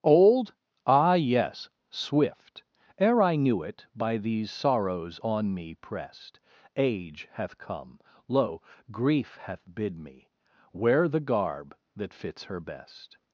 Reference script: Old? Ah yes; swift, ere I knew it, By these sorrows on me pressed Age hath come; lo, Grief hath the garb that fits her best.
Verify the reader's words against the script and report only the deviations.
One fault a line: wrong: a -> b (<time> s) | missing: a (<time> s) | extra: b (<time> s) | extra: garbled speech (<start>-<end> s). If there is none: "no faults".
extra: bid me Wear (9.7 s)